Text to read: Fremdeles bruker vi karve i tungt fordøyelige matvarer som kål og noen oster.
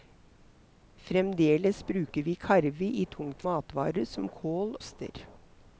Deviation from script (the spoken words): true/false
true